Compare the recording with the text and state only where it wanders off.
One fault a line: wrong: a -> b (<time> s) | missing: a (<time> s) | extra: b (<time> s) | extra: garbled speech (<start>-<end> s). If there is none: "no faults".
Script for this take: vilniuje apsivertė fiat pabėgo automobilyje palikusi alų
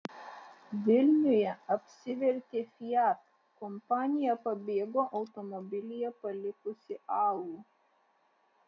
extra: kompanija (3.6 s)